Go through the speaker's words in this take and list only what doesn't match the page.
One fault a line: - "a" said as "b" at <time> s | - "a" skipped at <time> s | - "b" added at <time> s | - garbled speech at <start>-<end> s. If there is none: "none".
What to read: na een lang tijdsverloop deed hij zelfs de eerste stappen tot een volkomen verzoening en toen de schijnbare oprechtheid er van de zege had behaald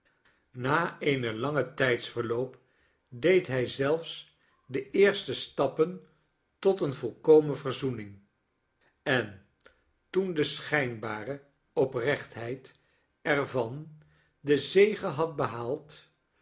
none